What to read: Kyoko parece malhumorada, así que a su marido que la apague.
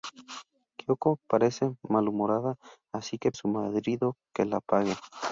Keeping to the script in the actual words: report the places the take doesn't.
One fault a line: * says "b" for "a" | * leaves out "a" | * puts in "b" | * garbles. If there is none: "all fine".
all fine